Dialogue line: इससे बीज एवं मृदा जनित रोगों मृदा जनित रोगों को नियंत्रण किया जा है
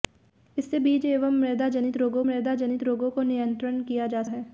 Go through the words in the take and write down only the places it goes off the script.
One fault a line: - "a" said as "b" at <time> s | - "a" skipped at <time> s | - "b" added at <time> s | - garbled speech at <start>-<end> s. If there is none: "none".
none